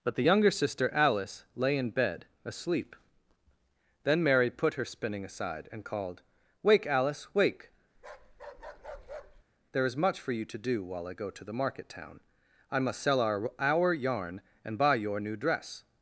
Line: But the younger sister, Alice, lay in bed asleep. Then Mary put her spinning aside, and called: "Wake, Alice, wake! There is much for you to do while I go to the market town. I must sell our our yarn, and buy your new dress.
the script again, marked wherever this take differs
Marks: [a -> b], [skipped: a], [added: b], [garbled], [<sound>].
But the younger sister, Alice, lay in bed asleep. Then Mary put her spinning aside, and called: "Wake, Alice, wake! [bark] There is much for you to do while I go to the market town. I must sell our our yarn, and buy your new dress.